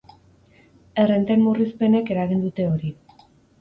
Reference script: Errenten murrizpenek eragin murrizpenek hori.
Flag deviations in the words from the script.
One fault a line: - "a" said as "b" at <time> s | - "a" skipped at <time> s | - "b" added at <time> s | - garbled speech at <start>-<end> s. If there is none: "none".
- "murrizpenek" said as "dute" at 2.5 s